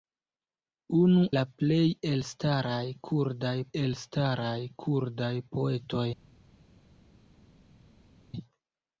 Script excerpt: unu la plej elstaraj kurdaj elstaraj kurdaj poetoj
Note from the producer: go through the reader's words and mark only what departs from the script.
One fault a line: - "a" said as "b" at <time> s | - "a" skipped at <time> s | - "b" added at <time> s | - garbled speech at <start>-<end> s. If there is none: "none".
none